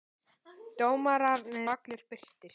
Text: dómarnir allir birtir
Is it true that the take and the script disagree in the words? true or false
false